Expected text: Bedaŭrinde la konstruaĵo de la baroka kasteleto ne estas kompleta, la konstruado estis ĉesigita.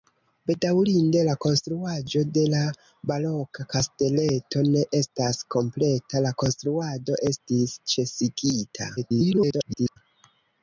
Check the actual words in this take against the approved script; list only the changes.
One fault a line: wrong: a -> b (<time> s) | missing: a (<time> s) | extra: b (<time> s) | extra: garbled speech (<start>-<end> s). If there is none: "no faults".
extra: garbled speech (9.0-10.0 s)